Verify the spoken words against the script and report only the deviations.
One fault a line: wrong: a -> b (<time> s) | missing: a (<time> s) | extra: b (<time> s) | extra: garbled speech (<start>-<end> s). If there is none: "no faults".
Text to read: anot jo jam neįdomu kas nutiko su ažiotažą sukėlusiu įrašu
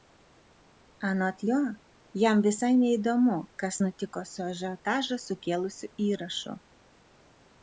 extra: visai (2.4 s)